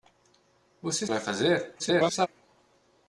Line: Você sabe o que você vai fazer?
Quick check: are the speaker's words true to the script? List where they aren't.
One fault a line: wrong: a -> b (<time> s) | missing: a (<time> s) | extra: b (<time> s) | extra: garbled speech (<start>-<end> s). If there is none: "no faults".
missing: sabe (1.1 s)
missing: você (1.1 s)
extra: garbled speech (1.8-2.3 s)